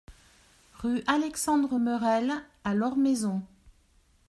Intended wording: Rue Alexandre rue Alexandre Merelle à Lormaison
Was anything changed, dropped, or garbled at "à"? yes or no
no